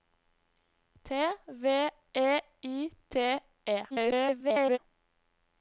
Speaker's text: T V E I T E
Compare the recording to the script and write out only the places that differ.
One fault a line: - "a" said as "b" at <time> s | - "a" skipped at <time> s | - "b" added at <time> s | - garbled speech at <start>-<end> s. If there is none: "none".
- garbled speech at 3.9-4.8 s